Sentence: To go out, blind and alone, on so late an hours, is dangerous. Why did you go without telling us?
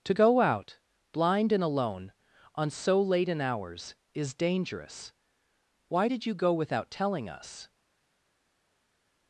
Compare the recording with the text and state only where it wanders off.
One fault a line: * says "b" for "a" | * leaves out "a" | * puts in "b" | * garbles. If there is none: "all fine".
all fine